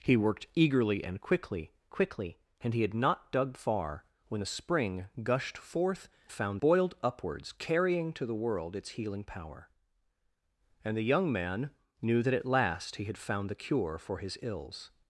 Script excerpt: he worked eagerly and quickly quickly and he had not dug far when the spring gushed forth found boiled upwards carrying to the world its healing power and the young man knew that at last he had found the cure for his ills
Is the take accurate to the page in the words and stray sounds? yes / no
yes